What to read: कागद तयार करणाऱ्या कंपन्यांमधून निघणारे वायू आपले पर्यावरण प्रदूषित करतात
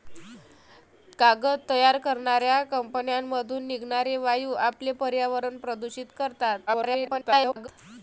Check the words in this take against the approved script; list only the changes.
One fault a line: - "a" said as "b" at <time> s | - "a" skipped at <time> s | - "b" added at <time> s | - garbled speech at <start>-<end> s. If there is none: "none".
- garbled speech at 6.7-7.7 s